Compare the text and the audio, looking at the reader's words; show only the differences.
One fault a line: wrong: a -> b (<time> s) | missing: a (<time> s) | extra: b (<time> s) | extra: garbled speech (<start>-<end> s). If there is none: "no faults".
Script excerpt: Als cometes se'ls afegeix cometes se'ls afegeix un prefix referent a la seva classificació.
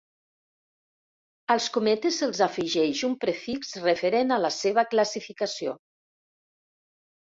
missing: cometes se'ls afegeix (3.0 s)